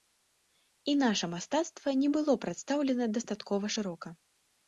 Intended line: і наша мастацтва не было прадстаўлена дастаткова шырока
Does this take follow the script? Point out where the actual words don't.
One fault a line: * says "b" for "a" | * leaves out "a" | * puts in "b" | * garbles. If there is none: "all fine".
all fine